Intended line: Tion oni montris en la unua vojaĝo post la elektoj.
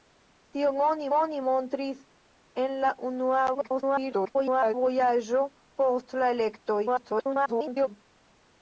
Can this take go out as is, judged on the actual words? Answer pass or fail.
fail